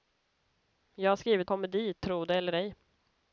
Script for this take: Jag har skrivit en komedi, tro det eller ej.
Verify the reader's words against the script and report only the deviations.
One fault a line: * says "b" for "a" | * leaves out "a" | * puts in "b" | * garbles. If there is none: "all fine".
* leaves out "en"